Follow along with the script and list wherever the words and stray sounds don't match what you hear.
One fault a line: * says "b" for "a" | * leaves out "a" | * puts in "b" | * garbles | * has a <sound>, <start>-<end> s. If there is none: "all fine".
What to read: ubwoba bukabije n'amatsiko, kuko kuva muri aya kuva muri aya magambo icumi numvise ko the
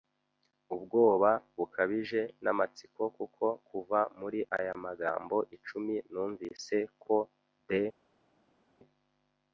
* leaves out "kuva muri aya"